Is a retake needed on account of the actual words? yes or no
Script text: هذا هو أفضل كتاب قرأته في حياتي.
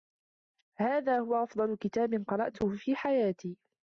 no